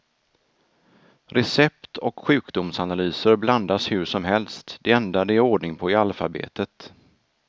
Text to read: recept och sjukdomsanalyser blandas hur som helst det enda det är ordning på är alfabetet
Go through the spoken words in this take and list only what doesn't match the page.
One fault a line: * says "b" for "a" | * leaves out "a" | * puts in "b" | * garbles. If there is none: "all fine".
all fine